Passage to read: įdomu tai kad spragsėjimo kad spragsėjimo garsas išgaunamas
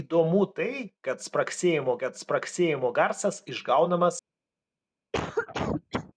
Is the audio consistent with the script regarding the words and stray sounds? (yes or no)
no